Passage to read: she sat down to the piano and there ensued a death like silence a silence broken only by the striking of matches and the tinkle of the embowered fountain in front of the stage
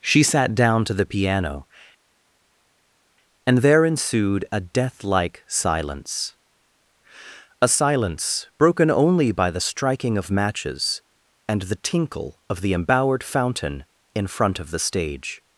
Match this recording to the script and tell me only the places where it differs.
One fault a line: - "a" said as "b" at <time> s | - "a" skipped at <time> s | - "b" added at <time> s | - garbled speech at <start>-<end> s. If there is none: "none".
none